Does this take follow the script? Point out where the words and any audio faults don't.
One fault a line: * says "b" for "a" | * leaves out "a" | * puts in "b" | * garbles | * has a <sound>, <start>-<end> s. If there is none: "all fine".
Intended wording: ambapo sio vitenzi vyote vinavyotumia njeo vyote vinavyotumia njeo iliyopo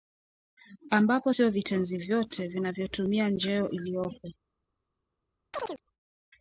* leaves out "vyote vinavyotumia njeo"
* has a chirp, 5.5-5.8 s